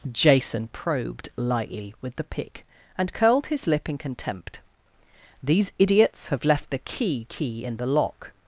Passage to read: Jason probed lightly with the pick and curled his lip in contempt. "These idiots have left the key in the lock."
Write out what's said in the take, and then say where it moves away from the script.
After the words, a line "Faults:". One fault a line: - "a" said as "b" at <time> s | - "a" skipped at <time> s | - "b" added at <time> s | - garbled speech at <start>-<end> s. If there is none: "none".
Jason probed lightly with the pick and curled his lip in contempt. "These idiots have left the key key in the lock."
Faults:
- "key" added at 7.3 s